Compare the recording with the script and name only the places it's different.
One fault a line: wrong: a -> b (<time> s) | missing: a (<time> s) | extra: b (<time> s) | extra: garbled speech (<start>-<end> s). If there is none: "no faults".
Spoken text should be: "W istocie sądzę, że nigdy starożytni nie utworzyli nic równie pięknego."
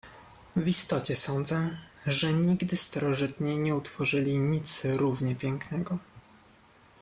no faults